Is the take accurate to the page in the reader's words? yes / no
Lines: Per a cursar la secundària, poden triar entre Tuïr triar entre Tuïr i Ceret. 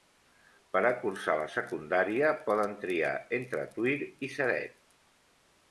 no